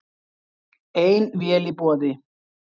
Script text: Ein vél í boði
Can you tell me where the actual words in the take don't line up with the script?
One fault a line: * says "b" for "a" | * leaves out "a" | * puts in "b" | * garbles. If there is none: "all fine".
all fine